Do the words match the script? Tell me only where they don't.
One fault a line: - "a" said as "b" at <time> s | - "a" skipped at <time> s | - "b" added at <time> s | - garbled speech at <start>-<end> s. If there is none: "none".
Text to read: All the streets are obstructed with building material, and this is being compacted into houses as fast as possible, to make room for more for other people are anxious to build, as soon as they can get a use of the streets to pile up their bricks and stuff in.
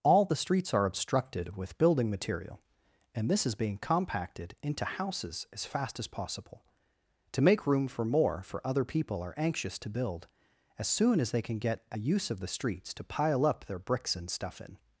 none